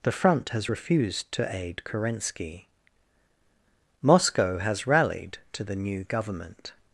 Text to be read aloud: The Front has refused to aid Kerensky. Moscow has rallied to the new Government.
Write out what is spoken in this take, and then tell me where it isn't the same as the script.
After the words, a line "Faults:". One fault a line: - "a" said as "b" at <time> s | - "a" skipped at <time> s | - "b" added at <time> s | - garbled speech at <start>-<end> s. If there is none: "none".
The Front has refused to aid Kerensky. Moscow has rallied to the new Government.
Faults:
none